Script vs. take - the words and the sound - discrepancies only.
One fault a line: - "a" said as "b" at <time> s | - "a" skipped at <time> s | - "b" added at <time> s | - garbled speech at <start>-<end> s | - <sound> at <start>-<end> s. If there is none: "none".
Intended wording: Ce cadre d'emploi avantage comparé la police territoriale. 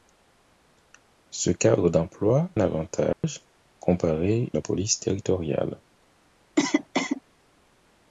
- dropout at 3.1-3.2 s
- cough at 6.6-7.2 s